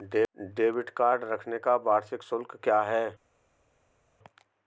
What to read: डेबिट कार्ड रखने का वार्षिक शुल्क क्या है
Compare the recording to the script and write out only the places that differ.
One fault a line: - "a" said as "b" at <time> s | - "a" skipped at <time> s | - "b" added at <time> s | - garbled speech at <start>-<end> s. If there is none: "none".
none